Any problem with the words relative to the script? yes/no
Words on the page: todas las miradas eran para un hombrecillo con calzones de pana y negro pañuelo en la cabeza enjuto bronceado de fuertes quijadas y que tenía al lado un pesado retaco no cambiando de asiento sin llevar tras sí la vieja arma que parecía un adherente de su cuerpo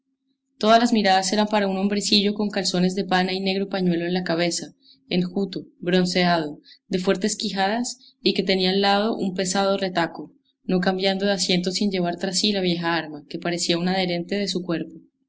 no